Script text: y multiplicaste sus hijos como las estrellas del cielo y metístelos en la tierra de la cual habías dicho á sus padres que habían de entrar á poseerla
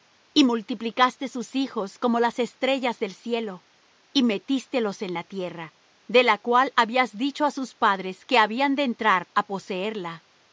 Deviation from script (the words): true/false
false